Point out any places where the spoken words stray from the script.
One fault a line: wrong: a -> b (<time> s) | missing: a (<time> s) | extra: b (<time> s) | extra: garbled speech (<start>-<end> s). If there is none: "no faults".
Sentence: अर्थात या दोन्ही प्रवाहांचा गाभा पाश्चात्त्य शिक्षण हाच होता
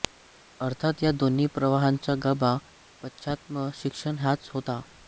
no faults